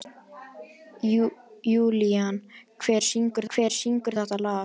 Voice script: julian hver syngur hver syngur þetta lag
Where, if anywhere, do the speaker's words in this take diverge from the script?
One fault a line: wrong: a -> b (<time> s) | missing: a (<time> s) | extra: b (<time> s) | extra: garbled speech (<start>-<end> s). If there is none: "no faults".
no faults